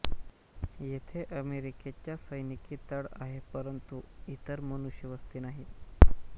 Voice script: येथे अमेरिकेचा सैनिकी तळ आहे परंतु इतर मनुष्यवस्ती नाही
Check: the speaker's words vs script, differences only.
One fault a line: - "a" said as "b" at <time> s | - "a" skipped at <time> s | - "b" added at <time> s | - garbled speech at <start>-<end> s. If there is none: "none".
none